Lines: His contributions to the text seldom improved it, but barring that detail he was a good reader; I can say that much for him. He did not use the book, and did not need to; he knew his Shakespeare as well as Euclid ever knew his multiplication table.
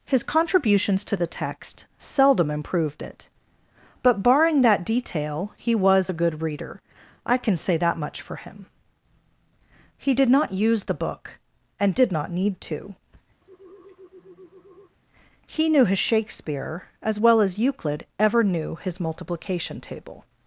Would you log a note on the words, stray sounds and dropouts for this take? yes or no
yes